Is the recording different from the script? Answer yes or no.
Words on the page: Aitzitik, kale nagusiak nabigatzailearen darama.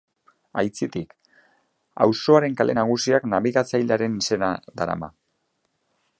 yes